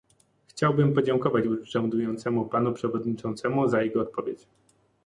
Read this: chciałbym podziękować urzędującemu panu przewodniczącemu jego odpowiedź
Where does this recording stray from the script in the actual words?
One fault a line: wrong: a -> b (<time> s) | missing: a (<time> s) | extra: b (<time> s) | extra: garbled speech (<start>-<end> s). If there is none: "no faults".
extra: za (3.7 s)